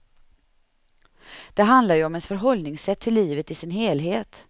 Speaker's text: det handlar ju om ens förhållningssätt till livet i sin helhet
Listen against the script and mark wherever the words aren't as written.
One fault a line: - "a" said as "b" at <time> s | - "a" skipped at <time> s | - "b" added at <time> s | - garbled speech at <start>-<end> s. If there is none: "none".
none